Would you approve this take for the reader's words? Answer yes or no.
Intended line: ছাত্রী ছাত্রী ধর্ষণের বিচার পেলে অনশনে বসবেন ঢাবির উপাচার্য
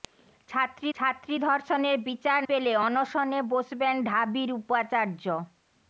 yes